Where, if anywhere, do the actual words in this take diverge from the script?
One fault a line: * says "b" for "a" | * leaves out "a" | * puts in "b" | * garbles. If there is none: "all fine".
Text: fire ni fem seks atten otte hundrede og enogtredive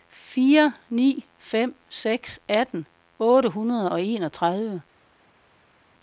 all fine